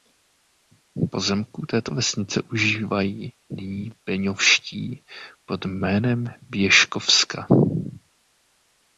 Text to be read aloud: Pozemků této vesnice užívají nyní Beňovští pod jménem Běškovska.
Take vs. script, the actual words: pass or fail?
pass